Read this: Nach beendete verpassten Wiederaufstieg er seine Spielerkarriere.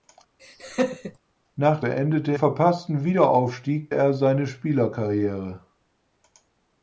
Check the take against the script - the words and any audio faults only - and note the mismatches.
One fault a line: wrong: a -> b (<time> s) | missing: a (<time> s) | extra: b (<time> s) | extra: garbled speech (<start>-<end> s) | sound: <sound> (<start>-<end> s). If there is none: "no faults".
sound: laugh (0.4-1.2 s)